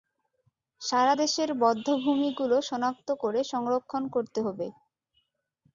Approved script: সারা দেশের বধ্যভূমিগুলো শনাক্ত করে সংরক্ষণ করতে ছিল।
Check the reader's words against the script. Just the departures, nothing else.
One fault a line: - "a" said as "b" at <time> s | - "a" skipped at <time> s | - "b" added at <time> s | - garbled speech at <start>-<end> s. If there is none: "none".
- "ছিল" said as "হবে" at 4.4 s